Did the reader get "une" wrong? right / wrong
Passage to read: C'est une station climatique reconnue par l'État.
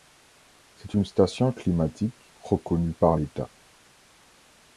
right